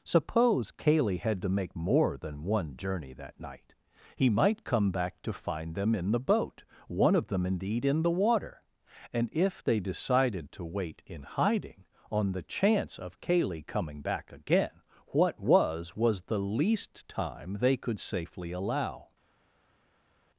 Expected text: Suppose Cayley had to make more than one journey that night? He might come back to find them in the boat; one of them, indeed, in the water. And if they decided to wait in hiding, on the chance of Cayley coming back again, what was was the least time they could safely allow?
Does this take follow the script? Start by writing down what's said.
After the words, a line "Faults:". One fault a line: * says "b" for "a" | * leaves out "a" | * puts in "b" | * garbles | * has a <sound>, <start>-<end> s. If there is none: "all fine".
Suppose Cayley had to make more than one journey that night? He might come back to find them in the boat; one of them, indeed, in the water. And if they decided to wait in hiding, on the chance of Cayley coming back again, what was was the least time they could safely allow?
Faults:
all fine